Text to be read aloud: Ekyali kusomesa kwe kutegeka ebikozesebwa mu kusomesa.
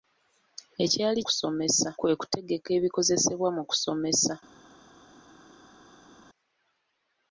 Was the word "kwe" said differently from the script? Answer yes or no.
no